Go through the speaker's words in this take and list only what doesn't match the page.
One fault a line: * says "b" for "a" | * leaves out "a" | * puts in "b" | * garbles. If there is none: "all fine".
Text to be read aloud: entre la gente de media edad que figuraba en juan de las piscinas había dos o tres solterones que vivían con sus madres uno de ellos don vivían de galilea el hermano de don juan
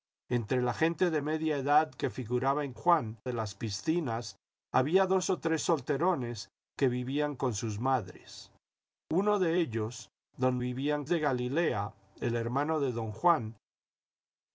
all fine